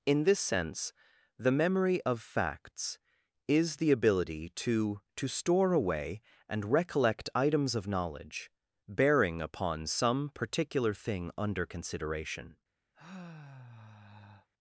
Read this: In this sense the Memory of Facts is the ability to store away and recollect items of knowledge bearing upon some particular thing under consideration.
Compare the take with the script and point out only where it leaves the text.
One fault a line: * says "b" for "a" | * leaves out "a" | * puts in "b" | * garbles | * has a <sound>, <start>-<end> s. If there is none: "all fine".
* puts in "to"
* has a sigh, 12.9-14.5 s